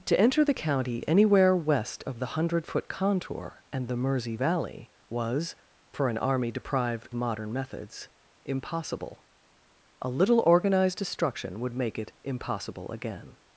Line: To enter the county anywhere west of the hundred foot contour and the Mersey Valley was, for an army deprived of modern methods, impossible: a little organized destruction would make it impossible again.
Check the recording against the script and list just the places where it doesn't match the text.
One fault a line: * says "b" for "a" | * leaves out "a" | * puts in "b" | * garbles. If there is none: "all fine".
* leaves out "of"